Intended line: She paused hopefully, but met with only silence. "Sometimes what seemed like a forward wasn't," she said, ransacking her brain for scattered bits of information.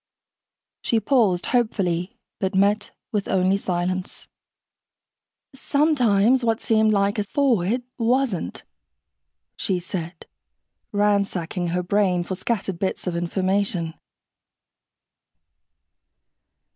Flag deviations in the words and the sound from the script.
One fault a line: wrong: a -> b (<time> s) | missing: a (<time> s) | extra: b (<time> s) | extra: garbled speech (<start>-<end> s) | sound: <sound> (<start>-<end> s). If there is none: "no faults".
no faults